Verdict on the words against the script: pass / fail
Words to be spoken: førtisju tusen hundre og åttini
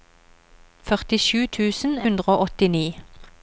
pass